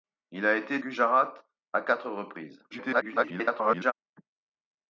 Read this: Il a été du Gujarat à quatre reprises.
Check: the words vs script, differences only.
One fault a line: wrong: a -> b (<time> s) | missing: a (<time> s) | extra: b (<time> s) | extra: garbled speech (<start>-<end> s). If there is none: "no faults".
missing: du (0.8 s)
extra: garbled speech (2.7-3.9 s)